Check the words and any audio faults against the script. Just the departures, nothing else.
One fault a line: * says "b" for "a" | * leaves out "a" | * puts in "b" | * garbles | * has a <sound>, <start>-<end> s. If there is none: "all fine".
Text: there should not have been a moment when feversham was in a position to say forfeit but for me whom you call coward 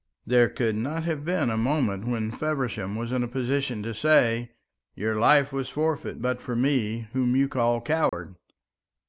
* says "could" for "should"
* puts in "your life was"
* has a dropout, 8.1-8.1 s